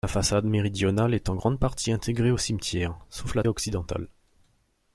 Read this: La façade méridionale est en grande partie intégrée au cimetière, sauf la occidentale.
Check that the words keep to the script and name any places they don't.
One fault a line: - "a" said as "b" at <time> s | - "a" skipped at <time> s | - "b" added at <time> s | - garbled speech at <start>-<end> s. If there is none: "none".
none